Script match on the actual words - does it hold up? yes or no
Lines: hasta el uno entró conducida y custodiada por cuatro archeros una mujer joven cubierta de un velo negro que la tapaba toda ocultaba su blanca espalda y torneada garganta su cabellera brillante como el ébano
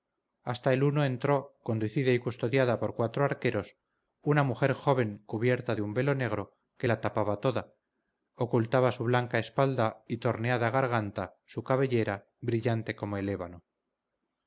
yes